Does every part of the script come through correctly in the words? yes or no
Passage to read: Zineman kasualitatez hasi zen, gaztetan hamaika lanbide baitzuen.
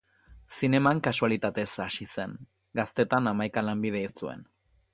yes